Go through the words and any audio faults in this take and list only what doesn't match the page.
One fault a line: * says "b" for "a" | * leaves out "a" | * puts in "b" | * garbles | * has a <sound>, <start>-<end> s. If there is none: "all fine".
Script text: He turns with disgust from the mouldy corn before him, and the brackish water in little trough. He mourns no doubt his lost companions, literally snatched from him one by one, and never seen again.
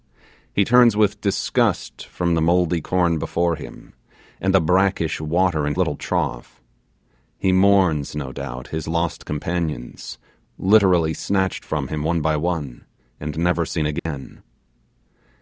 * has a dropout, 14.0-14.1 s